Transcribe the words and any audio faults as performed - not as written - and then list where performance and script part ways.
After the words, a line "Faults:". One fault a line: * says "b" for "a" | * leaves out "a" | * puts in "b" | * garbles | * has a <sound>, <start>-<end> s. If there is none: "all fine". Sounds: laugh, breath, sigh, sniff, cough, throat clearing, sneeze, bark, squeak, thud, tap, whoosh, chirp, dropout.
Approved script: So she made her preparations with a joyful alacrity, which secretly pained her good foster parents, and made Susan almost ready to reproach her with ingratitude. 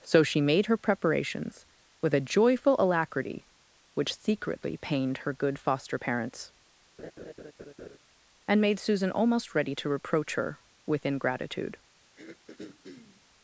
So she made her preparations with a joyful alacrity, which secretly pained her good foster parents, and made Susan almost ready to reproach her with ingratitude.
Faults:
* has a laugh, 7.0-8.0 s
* has a throat clearing, 12.2-13.2 s